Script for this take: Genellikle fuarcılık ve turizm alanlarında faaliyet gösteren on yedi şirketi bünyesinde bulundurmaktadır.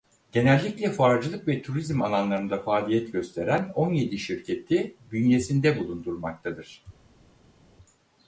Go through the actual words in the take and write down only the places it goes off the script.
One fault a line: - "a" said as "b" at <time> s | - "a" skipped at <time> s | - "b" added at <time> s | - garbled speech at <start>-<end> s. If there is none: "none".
none